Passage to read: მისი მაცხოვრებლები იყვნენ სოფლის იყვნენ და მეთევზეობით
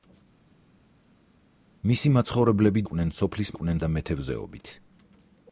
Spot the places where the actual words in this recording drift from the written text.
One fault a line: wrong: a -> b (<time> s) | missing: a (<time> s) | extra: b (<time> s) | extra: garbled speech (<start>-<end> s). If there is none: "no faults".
no faults